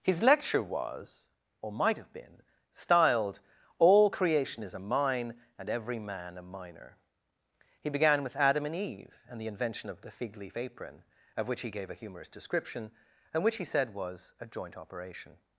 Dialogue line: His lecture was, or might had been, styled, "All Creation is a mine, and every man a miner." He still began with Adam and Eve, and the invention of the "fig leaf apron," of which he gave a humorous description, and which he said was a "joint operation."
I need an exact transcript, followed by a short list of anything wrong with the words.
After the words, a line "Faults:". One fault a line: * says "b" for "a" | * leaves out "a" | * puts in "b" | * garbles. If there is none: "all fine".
His lecture was, or might have been, styled, "All Creation is a mine, and every man a miner." He began with Adam and Eve, and the invention of the "fig leaf apron," of which he gave a humorous description, and which he said was a "joint operation."
Faults:
* says "have" for "had"
* leaves out "still"